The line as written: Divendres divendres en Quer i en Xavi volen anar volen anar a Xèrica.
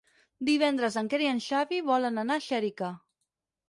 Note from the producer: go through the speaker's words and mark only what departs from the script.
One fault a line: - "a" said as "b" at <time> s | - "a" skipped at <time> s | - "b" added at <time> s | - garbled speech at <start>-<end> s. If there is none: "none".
- "divendres" skipped at 1.0 s
- "volen anar" skipped at 2.4 s